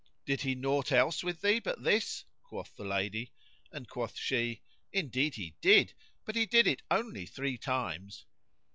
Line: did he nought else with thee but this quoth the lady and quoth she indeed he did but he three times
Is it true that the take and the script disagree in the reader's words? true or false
true